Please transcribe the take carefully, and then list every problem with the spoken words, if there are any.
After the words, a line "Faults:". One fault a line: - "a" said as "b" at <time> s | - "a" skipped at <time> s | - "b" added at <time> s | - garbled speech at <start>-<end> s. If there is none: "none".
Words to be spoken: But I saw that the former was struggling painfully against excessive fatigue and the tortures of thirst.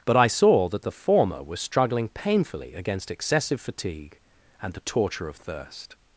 But I saw that the former was struggling painfully against excessive fatigue and the torture of thirst.
Faults:
- "tortures" said as "torture" at 4.8 s